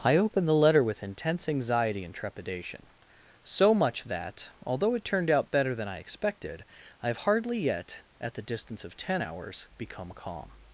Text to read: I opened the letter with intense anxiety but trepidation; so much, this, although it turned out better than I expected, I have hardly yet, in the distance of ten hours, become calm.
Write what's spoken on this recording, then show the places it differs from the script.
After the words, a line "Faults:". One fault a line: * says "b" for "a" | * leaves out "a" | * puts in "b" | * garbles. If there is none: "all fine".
I opened the letter with intense anxiety and trepidation; so much, that, although it turned out better than I expected, I have hardly yet, at the distance of ten hours, become calm.
Faults:
* says "and" for "but"
* says "that" for "this"
* says "at" for "in"